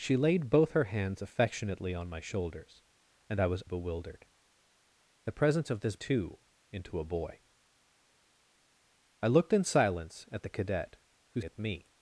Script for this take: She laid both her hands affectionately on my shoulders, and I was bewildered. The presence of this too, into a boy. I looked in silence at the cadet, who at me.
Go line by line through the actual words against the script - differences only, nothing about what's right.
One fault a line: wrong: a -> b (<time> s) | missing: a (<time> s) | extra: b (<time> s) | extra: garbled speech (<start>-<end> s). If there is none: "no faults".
no faults